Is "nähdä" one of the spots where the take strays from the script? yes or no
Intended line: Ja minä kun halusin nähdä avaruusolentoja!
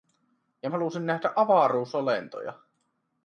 no